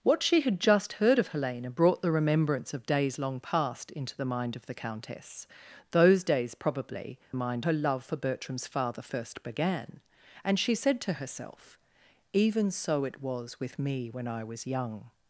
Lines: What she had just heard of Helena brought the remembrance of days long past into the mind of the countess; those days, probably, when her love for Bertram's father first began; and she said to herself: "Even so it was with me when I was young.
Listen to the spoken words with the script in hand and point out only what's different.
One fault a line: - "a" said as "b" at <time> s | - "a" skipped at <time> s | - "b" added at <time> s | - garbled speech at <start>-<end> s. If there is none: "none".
- "when" said as "mind" at 7.3 s